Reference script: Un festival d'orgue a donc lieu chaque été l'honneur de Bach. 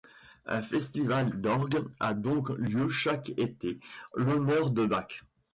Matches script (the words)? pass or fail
pass